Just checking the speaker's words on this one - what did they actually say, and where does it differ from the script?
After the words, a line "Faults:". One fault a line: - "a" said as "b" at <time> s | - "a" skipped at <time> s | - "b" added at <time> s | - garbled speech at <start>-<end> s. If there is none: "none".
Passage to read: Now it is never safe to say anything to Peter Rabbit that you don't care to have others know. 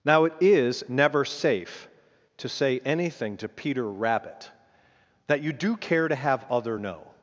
Now it is never safe to say anything to Peter Rabbit that you do care to have other know.
Faults:
- "don't" said as "do" at 5.5 s
- "others" said as "other" at 6.5 s